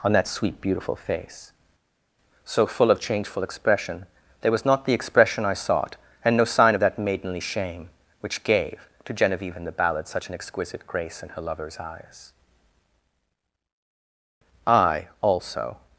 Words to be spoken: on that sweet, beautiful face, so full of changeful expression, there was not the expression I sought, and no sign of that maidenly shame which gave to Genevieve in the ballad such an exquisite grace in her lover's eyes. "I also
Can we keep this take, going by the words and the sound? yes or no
yes